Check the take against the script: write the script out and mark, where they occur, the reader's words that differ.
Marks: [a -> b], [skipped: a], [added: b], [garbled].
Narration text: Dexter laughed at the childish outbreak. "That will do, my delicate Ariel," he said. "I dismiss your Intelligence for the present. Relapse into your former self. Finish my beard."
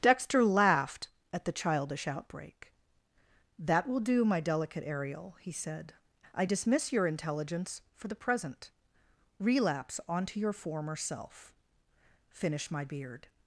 Dexter laughed at the childish outbreak. "That will do, my delicate Ariel," he said. "I dismiss your Intelligence for the present. Relapse [into -> onto] your former self. Finish my beard."